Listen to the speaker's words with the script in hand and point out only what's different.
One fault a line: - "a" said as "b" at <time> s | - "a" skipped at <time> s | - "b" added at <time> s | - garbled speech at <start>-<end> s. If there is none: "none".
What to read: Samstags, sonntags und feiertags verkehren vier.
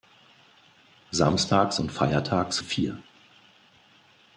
- "sonntags" skipped at 1.8 s
- "verkehren" skipped at 2.6 s